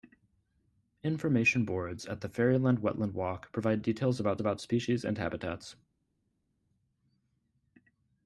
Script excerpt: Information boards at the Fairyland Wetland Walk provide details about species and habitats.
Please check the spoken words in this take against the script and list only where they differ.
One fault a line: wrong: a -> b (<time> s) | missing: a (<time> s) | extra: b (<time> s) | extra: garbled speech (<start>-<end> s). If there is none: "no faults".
extra: about (4.4 s)